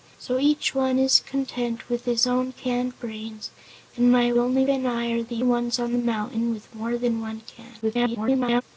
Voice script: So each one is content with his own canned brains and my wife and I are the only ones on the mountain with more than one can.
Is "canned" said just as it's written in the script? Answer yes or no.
yes